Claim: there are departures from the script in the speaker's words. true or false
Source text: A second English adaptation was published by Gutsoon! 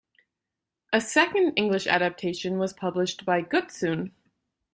false